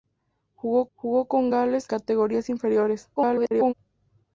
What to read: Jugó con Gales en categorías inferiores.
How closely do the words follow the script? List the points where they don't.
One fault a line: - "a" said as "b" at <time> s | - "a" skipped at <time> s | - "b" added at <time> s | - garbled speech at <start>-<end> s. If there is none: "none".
- "jugó" added at 1.0 s
- "en" skipped at 1.9 s
- garbled speech at 3.2-3.7 s